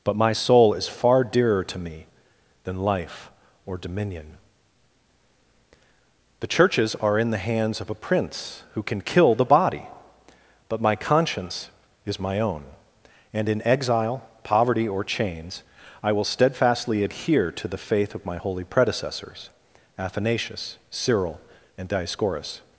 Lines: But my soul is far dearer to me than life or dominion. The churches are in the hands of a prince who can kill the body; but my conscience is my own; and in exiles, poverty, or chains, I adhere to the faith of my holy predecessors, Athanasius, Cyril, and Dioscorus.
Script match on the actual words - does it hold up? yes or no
no